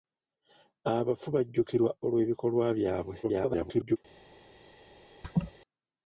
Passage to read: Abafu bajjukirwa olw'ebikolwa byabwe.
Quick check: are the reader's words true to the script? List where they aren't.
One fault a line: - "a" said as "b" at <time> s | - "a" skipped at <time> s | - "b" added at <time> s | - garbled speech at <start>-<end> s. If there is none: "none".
- garbled speech at 3.2-4.0 s